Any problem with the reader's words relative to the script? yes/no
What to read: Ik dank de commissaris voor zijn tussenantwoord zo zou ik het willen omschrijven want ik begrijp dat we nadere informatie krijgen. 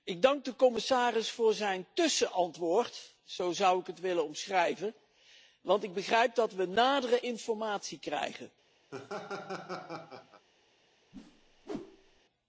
no